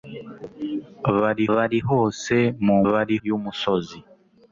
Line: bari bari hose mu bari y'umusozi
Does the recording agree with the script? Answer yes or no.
yes